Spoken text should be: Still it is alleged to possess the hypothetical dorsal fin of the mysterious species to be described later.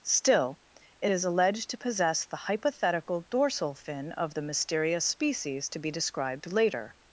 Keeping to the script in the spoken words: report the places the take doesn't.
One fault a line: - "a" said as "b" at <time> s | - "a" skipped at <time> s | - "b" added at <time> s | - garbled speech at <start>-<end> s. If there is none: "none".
none